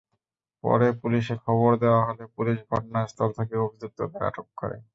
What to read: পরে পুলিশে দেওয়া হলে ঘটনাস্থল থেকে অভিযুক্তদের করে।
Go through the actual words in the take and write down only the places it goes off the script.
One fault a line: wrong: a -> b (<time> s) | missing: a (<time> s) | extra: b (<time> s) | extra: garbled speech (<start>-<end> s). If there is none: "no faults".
extra: খবর (1.4 s)
extra: পুলিশ (2.4 s)
extra: আটক (4.3 s)